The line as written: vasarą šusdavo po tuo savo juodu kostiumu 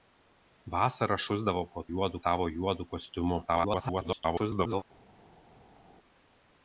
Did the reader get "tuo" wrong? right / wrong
wrong